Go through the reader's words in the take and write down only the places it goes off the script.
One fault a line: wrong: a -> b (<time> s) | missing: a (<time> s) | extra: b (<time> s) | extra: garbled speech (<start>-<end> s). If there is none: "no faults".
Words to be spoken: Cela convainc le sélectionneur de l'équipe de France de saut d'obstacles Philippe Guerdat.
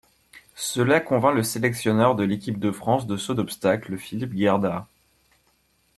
no faults